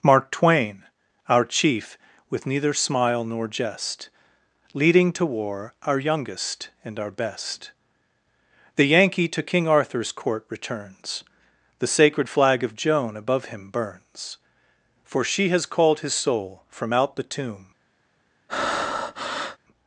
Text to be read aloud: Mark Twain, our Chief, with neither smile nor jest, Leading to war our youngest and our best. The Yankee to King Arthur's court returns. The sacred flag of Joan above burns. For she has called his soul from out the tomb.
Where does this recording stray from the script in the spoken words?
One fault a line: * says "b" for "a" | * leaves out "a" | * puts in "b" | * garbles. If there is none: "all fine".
* puts in "him"